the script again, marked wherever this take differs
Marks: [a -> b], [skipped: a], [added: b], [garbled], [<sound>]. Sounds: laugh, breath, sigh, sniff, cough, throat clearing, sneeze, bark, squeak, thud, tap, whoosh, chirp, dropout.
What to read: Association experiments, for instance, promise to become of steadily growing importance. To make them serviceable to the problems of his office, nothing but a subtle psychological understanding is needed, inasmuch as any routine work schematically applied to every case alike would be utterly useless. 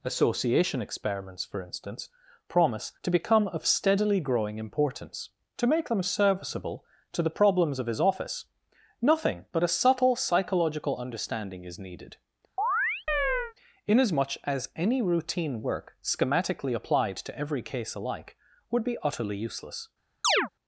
Association experiments, for instance, promise to become of steadily growing importance. To make them serviceable to the problems of his office, nothing but a subtle psychological understanding is needed, [chirp] inasmuch as any routine work schematically applied to every case alike would be utterly useless. [chirp]